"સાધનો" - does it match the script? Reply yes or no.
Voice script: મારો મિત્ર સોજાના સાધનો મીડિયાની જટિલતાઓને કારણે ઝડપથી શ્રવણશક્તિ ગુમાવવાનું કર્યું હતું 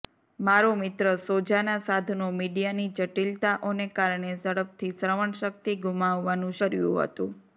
yes